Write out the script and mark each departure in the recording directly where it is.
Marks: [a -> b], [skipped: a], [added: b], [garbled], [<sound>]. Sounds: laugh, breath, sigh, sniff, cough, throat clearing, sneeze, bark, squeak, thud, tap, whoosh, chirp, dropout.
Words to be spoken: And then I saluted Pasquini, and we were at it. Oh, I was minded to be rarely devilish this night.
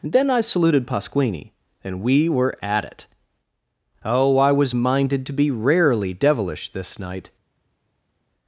[skipped: And] then I saluted Pasquini, and we were at it. Oh, I was minded to be rarely devilish this night.